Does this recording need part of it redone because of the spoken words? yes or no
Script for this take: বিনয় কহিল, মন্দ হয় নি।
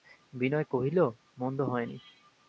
no